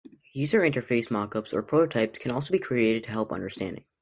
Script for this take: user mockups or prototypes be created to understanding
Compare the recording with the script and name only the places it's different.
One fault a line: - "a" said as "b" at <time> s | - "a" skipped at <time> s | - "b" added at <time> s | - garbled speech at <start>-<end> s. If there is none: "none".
- "interface" added at 0.6 s
- "can also" added at 2.2 s
- "help" added at 3.1 s